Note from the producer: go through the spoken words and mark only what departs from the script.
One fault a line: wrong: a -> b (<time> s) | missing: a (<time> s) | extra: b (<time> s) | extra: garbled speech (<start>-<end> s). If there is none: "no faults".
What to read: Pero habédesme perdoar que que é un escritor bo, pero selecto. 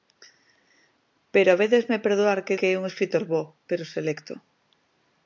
no faults